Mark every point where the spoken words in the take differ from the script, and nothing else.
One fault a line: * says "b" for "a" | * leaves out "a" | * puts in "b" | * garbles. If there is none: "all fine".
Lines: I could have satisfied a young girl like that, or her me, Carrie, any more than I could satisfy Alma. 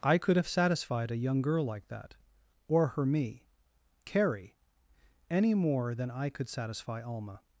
all fine